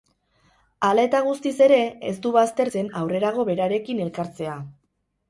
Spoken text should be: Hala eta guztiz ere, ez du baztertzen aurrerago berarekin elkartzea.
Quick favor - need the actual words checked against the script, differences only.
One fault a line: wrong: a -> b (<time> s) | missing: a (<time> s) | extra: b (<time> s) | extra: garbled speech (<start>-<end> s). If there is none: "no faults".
no faults